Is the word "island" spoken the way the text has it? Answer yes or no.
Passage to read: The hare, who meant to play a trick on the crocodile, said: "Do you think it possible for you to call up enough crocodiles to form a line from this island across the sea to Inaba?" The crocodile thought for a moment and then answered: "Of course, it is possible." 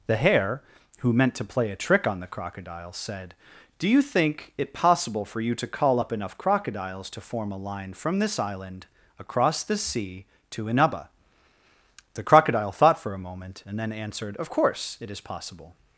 yes